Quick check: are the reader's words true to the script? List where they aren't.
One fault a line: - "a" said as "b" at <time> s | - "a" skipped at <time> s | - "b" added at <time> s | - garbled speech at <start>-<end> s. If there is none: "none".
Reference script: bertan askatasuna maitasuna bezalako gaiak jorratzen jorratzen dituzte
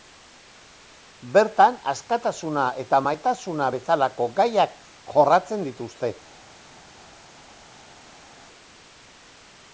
- "eta" added at 2.8 s
- "jorratzen" skipped at 5.7 s